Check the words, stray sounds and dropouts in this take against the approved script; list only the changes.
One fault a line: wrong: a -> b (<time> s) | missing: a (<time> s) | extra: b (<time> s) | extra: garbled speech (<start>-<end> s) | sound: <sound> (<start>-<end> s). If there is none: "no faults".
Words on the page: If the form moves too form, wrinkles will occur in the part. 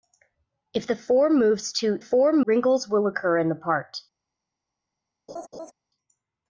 sound: laugh (5.3-5.7 s)